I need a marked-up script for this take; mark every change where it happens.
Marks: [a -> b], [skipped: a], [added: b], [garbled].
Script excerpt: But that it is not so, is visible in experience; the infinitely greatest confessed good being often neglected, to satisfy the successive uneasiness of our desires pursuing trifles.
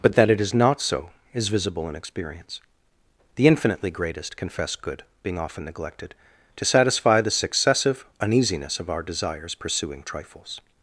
But that it is not so, is visible in experience; the infinitely greatest [confessed -> confess] good being often neglected, to satisfy the successive uneasiness of our desires pursuing trifles.